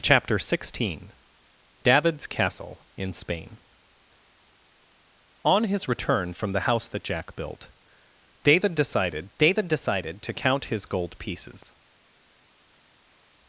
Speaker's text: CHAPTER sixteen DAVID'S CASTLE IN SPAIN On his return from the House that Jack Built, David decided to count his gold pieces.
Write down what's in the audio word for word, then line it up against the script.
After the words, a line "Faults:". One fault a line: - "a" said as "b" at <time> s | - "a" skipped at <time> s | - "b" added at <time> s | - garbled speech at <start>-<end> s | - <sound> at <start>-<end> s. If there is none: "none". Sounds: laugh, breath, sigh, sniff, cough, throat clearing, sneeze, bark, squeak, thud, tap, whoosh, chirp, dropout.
CHAPTER sixteen DAVID'S CASTLE IN SPAIN On his return from the House that Jack Built, David decided David decided to count his gold pieces.
Faults:
- "David decided" added at 9.4 s